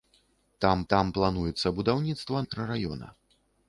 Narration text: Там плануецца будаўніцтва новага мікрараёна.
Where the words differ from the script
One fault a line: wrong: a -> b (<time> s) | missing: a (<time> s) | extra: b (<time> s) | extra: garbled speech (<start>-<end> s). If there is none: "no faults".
extra: там (0.9 s)
missing: новага (2.4 s)